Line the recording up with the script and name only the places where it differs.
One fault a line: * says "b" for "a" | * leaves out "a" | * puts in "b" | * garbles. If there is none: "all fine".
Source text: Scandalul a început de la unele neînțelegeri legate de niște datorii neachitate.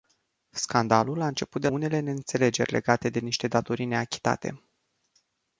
* leaves out "la"